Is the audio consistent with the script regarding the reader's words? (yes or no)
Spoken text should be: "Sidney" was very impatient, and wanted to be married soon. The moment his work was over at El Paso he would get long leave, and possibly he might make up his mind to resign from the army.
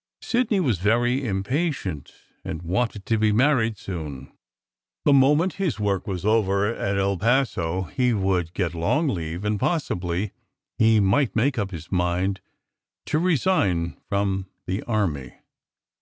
yes